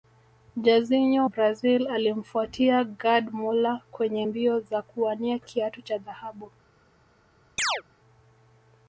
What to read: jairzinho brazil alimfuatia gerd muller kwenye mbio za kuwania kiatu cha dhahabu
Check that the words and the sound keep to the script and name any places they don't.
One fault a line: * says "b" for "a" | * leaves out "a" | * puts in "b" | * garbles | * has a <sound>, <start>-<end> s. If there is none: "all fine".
* has a chirp, 7.6-7.8 s